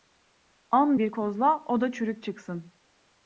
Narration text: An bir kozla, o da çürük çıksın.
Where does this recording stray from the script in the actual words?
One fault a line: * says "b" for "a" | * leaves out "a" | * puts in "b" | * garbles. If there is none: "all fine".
all fine